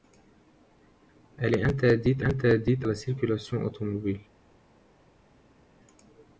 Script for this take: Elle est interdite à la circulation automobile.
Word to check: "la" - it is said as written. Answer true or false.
true